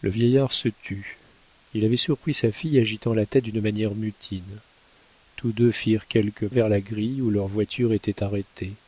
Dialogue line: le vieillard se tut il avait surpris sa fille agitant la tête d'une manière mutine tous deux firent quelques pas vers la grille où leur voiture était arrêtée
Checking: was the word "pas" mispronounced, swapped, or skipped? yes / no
yes